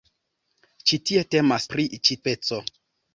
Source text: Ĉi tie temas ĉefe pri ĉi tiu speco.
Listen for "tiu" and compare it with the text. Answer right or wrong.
wrong